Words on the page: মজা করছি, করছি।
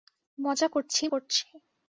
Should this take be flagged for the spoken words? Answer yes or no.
no